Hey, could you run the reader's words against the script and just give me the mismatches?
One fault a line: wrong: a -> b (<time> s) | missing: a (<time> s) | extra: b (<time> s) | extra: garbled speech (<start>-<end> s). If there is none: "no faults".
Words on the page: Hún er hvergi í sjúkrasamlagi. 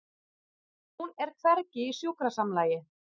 no faults